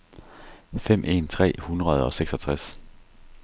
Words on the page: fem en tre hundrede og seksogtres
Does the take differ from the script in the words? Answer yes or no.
no